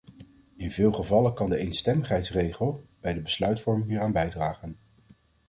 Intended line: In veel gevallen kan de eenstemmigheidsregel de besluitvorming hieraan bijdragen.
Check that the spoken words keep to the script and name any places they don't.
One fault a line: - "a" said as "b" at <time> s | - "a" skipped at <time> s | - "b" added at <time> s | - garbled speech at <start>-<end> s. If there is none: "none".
- "bij" added at 3.0 s